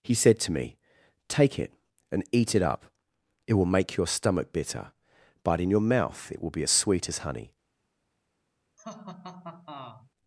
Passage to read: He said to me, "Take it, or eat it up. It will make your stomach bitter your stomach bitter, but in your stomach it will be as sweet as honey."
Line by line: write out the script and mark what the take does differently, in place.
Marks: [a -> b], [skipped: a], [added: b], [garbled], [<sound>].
He said to me, "Take it, [or -> and] eat it up. It will make your stomach bitter [skipped: your stomach bitter,] but in your [stomach -> mouth] it will be as sweet as honey." [laugh]